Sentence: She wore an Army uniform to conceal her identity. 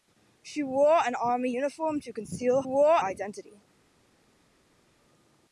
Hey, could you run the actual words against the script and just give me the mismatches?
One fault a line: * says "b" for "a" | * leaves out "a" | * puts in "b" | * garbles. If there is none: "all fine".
* says "wore" for "her"